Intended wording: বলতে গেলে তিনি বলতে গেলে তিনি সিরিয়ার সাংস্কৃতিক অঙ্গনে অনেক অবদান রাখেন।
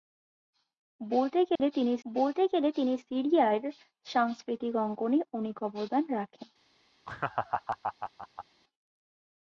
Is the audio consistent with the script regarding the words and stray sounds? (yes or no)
no